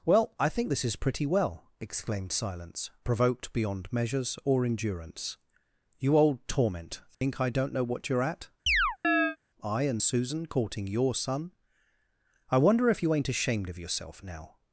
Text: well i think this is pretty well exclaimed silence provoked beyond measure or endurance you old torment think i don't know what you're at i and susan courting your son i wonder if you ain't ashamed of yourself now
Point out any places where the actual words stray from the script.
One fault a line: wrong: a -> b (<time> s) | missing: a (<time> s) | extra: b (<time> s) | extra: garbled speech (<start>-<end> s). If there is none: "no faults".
wrong: measure -> measures (3.9 s)